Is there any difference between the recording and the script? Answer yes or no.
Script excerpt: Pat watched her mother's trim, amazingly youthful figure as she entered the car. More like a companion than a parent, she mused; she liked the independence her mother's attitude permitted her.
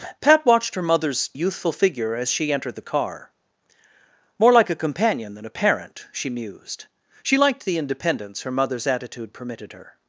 yes